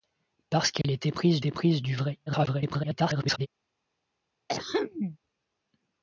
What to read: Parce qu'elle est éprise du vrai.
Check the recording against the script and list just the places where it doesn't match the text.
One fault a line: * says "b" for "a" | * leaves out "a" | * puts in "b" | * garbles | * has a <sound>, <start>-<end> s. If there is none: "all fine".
* has a dropout, 0.8-0.8 s
* puts in "éprise"
* garbles
* has a throat clearing, 4.5-5.2 s